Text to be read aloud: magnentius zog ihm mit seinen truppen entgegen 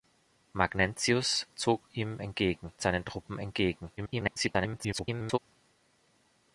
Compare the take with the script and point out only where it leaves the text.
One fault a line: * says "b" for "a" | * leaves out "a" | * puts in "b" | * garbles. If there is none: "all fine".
* says "entgegen" for "mit"
* garbles